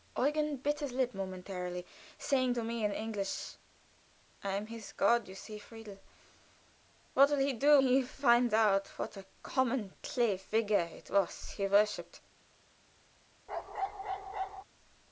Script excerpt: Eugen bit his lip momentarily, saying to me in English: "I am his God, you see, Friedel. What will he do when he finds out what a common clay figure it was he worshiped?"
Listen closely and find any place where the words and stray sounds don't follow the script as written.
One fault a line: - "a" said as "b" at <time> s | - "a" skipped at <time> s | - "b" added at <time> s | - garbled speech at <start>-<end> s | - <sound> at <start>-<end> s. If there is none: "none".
- "when" skipped at 7.8 s
- bark at 13.5-14.6 s